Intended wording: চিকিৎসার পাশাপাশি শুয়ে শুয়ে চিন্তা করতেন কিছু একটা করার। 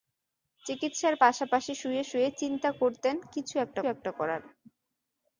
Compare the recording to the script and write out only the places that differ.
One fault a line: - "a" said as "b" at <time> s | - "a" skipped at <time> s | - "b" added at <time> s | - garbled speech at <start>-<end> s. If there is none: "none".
- "একটা" added at 3.9 s